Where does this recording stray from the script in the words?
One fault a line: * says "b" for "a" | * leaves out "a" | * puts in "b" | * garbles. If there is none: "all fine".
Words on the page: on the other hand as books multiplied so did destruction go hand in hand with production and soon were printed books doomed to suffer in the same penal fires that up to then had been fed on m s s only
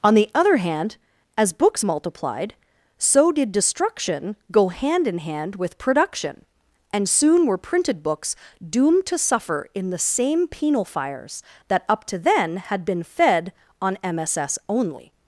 all fine